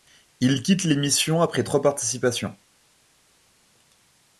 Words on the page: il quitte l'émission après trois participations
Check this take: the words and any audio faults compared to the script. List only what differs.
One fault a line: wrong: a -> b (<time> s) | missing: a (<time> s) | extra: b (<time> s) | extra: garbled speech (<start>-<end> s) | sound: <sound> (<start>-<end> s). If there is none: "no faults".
no faults